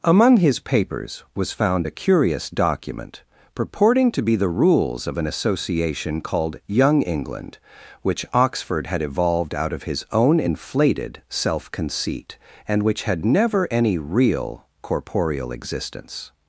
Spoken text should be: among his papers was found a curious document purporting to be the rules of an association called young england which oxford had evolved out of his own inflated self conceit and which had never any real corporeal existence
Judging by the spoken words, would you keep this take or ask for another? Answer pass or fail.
pass